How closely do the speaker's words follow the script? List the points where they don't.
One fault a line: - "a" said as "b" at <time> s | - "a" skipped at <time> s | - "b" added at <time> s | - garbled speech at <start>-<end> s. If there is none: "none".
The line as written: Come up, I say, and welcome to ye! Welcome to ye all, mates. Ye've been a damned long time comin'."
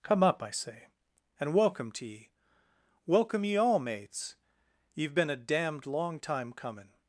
- "to" skipped at 3.5 s